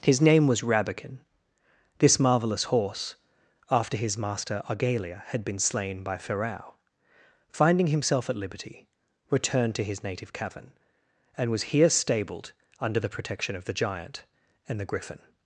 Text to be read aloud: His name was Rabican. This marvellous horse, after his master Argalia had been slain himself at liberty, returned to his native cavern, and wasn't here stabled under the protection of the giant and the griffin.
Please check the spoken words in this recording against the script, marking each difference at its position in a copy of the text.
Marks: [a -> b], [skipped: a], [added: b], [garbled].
His name was Rabican. This marvellous horse, after his master Argalia had been slain [added: by Ferrau finding] himself at liberty, returned to his native cavern, and [wasn't -> was] here stabled under the protection of the giant and the griffin.